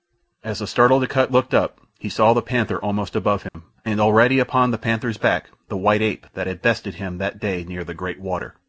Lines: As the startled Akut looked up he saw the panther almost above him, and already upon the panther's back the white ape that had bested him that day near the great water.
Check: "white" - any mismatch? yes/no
no